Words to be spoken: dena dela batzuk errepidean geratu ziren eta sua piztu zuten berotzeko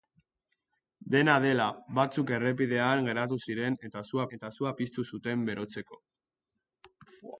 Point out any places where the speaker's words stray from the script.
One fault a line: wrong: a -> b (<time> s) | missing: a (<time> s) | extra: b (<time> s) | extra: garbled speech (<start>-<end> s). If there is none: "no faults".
extra: eta sua (4.4 s)